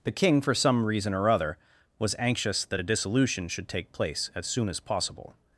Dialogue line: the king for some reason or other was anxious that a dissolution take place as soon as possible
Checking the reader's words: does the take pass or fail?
fail